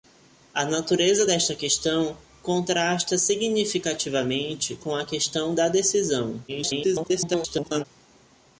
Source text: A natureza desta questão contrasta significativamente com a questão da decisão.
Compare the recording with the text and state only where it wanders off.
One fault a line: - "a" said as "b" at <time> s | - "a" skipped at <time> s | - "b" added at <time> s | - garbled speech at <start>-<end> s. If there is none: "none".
- garbled speech at 6.5-7.8 s